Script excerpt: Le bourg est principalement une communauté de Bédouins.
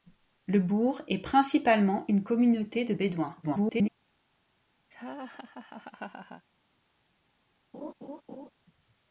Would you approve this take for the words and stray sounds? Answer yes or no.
no